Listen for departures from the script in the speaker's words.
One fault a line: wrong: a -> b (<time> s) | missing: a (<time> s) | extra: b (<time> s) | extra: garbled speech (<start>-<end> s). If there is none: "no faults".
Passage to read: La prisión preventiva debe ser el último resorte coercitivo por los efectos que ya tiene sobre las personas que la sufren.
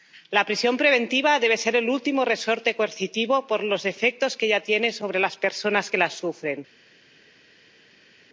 no faults